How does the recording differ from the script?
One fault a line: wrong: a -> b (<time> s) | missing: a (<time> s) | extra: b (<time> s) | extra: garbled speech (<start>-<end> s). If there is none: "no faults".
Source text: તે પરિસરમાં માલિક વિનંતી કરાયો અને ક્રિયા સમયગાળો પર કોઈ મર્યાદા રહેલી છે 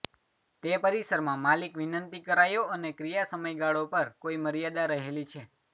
no faults